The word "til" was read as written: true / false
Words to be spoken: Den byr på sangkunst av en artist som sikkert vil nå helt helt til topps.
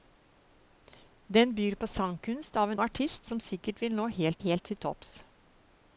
true